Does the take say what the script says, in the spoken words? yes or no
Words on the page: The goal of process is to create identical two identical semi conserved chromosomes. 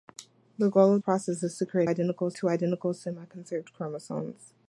yes